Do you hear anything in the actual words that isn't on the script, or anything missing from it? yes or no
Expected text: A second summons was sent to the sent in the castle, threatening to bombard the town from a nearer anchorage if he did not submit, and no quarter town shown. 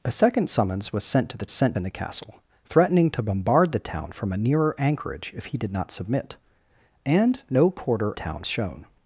no